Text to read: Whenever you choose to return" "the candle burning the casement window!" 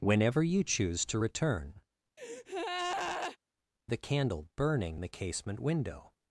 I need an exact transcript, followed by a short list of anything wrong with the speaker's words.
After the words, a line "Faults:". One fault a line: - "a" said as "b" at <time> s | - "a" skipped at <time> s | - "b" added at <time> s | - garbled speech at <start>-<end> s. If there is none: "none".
Whenever you choose to return" "the candle burning the casement window!"
Faults:
none